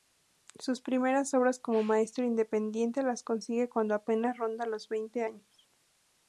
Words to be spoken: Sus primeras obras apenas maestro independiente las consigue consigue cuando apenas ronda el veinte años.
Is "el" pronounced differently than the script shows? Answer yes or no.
yes